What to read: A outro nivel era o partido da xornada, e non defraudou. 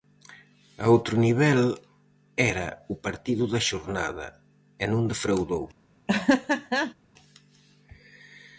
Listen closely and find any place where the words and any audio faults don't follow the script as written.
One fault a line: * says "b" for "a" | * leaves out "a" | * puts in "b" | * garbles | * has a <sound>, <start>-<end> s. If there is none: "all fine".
* has a laugh, 6.1-6.9 s